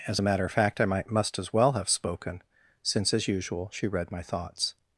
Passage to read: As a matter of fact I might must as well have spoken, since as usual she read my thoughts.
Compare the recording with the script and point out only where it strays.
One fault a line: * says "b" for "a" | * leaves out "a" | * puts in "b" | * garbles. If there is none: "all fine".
all fine